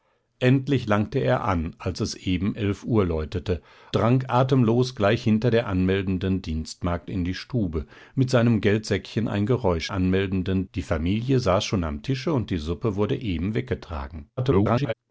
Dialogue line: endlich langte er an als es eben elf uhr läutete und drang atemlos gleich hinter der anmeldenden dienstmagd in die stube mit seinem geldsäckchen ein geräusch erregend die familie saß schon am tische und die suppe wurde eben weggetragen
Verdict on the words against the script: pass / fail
fail